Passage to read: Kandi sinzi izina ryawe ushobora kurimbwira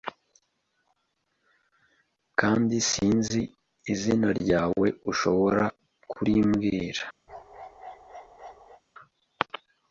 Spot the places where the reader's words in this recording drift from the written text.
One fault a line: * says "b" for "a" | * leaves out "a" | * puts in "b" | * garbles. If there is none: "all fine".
all fine